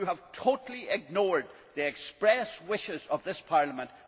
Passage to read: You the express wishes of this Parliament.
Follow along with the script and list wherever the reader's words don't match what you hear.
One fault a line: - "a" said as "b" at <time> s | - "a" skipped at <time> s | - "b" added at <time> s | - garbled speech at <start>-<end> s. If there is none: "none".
- "have totally ignored" added at 0.0 s